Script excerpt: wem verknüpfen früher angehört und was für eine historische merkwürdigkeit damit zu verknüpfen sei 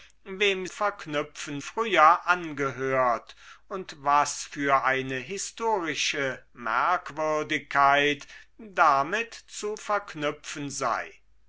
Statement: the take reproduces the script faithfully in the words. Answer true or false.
true